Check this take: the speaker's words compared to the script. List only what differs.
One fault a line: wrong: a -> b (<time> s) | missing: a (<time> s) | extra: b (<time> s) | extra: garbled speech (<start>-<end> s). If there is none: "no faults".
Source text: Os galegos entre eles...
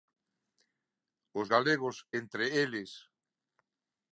no faults